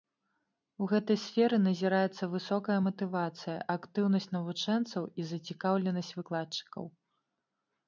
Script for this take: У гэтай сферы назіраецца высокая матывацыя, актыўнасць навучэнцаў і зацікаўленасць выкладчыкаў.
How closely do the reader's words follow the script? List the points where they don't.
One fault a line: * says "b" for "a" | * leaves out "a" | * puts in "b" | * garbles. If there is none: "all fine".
all fine